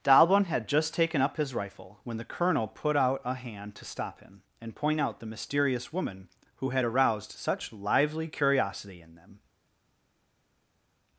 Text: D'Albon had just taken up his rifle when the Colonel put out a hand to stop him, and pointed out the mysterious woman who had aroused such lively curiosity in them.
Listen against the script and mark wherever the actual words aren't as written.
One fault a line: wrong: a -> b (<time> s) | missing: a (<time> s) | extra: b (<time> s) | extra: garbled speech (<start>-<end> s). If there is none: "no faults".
wrong: pointed -> point (4.8 s)